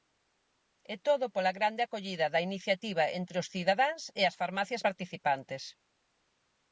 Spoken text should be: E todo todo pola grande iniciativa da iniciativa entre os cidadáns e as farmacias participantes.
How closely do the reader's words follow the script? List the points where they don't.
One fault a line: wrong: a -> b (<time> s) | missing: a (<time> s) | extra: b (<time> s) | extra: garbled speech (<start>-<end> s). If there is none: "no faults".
missing: todo (1.2 s)
wrong: iniciativa -> acollida (1.8 s)